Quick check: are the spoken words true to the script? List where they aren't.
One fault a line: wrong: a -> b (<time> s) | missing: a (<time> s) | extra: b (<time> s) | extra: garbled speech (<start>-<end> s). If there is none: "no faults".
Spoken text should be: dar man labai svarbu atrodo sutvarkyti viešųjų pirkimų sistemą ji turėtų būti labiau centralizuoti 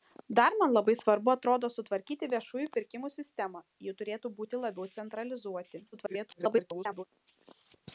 extra: garbled speech (5.9-7.0 s)